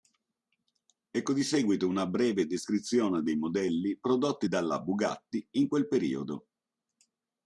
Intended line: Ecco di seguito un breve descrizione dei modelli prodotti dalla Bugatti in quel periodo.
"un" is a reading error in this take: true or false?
true